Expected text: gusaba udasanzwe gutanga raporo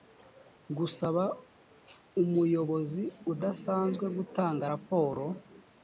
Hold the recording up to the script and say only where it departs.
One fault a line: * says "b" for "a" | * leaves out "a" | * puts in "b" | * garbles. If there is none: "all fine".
* puts in "umuyobozi"